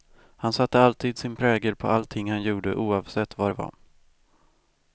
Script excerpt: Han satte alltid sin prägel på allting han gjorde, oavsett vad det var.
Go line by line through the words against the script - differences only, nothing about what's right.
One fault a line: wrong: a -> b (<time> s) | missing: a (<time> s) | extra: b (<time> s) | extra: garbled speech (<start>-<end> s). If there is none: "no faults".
no faults